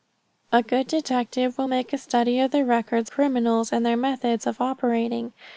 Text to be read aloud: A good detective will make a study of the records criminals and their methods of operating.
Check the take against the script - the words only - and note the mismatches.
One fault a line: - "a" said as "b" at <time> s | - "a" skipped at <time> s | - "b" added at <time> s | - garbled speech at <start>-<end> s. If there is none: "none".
none